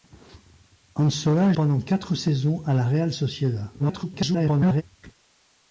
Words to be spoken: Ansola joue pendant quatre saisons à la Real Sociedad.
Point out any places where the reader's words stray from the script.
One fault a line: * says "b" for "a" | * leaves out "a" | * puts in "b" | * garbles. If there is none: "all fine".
* leaves out "joue"
* garbles